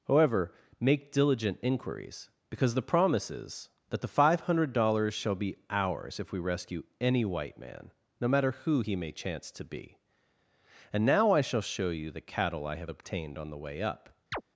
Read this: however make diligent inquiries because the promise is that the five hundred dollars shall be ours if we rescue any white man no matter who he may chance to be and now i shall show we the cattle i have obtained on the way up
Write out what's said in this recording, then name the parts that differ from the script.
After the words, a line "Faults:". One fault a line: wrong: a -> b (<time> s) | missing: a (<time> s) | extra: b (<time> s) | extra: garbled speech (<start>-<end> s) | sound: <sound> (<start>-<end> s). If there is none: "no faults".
however make diligent inquiries because the promise is that the five hundred dollars shall be ours if we rescue any white man no matter who he may chance to be and now i shall show you the cattle i have obtained on the way up
Faults:
wrong: we -> you (11.9 s)
sound: chirp (14.3-14.4 s)